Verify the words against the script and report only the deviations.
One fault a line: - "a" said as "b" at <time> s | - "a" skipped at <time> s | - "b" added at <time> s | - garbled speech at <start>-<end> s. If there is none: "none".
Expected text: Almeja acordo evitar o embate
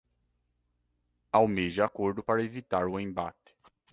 - "para" added at 2.2 s